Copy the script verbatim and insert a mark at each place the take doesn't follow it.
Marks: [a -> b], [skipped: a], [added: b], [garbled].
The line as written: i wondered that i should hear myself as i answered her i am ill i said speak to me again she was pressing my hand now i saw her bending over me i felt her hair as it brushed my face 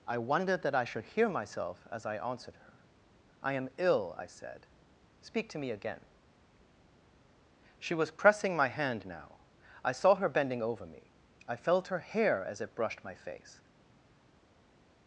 i wondered that i should hear myself as i answered her i am ill i said speak to me again she was pressing my hand now i saw her bending over me i felt her hair as it brushed my face